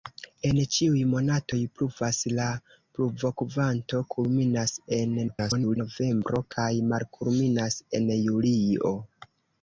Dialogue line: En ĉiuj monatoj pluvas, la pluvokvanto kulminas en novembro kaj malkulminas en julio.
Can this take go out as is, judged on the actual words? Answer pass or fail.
fail